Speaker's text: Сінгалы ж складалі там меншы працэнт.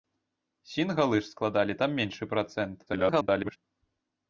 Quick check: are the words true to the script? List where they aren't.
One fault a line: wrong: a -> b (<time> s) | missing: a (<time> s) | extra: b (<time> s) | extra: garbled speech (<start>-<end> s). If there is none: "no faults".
extra: garbled speech (2.9-3.6 s)